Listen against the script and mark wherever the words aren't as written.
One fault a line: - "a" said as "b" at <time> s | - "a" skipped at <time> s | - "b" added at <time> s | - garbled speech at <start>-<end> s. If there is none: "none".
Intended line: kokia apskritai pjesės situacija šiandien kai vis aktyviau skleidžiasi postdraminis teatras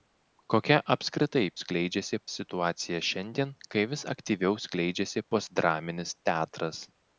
- "pjesės" said as "skleidžiasi" at 1.6 s